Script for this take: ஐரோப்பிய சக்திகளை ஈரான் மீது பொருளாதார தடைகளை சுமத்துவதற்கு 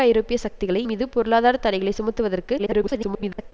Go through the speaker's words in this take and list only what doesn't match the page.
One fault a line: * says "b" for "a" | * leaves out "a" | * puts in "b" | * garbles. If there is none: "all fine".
* leaves out "ஈரான்"
* garbles